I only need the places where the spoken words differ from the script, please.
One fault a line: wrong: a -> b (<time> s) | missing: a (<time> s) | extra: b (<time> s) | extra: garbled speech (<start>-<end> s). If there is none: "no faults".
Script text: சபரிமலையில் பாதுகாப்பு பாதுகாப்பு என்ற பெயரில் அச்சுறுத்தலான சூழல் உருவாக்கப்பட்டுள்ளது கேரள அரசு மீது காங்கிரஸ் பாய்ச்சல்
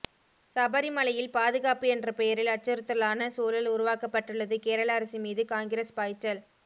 missing: பாதுகாப்பு (1.9 s)